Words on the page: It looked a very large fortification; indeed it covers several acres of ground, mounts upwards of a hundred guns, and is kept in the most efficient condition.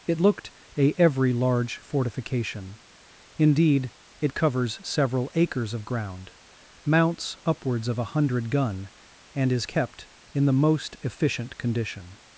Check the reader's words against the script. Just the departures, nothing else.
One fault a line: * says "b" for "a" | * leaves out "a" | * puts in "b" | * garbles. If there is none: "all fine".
* says "every" for "very"
* says "gun" for "guns"